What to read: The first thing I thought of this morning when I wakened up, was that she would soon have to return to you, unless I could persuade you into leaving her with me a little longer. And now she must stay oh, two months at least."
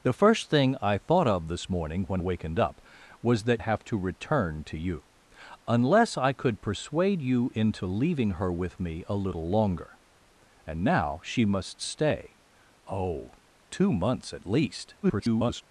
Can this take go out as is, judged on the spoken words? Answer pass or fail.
fail